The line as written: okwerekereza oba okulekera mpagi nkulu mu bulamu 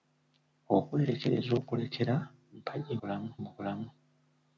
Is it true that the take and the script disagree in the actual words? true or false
true